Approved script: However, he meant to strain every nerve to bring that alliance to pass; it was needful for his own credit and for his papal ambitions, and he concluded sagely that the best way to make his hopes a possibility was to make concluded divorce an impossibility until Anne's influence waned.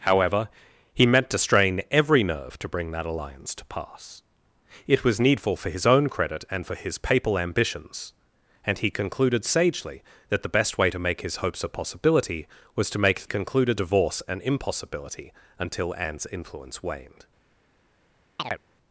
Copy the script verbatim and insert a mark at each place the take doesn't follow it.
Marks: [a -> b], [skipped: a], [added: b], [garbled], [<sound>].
However, he meant to strain every nerve to bring that alliance to pass; it was needful for his own credit and for his papal ambitions, and he concluded sagely that the best way to make his hopes a possibility was to make concluded divorce an impossibility until Anne's influence waned. [chirp]